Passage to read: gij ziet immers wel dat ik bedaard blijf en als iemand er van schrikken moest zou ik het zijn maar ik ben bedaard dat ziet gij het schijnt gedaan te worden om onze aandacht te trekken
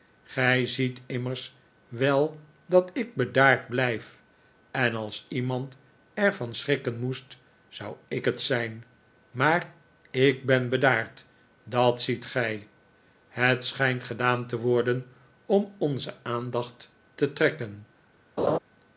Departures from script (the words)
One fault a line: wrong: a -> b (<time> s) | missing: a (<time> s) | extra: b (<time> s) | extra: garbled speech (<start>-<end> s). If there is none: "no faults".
no faults